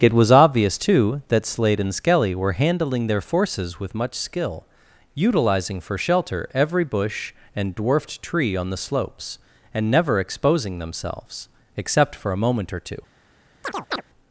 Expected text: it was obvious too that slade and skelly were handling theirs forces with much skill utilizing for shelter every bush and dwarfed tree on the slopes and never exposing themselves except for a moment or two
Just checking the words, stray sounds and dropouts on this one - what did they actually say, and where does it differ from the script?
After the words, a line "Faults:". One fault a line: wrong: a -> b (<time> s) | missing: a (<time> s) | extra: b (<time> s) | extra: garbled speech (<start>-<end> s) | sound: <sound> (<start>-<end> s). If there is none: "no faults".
it was obvious too that slade and skelly were handling their forces with much skill utilizing for shelter every bush and dwarfed tree on the slopes and never exposing themselves except for a moment or two
Faults:
wrong: theirs -> their (3.0 s)
sound: chirp (13.6-14.0 s)